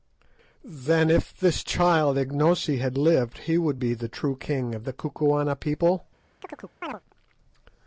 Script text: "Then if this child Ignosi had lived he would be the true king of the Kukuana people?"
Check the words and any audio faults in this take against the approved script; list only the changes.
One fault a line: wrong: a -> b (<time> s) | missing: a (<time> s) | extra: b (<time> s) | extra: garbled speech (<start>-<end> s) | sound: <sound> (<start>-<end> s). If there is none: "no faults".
sound: chirp (6.4-7.0 s)